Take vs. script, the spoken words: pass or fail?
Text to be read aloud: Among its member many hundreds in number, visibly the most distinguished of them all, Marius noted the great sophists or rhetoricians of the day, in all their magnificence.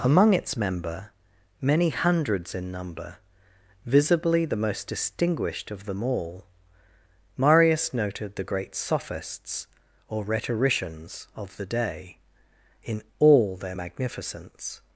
pass